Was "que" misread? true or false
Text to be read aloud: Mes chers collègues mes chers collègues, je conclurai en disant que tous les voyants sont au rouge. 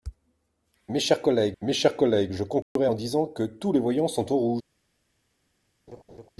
false